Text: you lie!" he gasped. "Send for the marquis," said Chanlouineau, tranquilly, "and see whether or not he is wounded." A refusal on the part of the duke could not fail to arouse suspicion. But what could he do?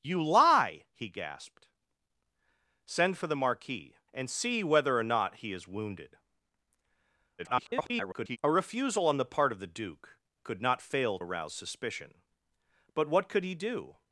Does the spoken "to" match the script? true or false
false